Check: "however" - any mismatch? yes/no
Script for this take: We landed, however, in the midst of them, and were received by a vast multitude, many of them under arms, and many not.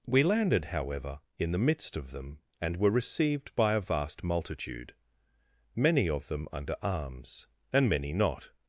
no